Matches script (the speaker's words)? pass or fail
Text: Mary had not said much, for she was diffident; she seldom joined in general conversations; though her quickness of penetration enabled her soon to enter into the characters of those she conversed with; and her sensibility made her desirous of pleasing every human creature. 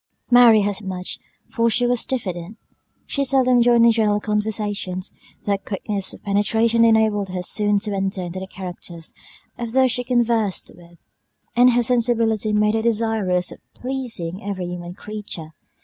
fail